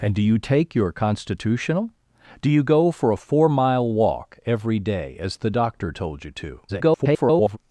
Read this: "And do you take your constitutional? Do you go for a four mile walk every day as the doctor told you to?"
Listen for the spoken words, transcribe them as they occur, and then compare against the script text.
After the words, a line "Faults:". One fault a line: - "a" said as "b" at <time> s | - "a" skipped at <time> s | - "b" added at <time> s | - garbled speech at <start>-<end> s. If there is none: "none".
"And do you take your constitutional? Do you go for a four mile walk every day as the doctor told you to?" [garbled]
Faults:
- garbled speech at 6.7-7.6 s